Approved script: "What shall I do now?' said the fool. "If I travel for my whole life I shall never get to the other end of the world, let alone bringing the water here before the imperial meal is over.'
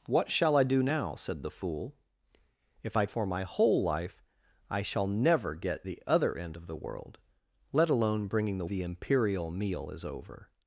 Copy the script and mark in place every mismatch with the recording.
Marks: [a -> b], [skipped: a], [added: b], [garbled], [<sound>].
"What shall I do now?' said the fool. "If I [skipped: travel] for my whole life I shall never get [skipped: to] the other end of the world, let alone bringing the [skipped: water here before] the imperial meal is over.'